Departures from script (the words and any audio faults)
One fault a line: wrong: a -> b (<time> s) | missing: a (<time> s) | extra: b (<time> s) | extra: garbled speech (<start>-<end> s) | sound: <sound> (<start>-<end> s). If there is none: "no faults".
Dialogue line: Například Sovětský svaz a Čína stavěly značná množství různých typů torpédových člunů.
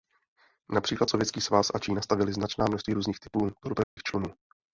sound: dropout (3.8-4.0 s)